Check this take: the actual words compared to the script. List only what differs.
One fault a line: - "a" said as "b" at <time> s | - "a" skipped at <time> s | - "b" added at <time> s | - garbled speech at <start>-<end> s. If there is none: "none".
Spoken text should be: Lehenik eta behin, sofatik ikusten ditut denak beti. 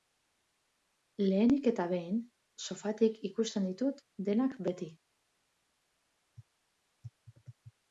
none